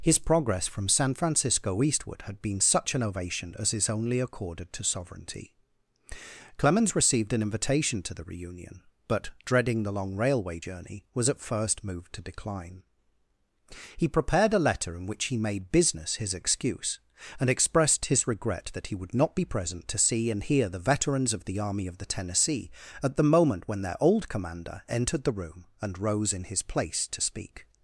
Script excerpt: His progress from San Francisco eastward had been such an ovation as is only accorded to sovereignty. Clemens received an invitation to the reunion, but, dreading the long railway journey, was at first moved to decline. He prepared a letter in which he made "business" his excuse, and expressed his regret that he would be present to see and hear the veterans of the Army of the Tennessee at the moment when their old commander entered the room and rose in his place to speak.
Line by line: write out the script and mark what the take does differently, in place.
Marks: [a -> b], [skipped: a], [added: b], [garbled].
His progress from San Francisco eastward had been such an ovation as is only accorded to sovereignty. Clemens received an invitation to the reunion, but, dreading the long railway journey, was at first moved to decline. He prepared a letter in which he made "business" his excuse, and expressed his regret that he would [added: not] be present to see and hear the veterans of the Army of the Tennessee at the moment when their old commander entered the room and rose in his place to speak.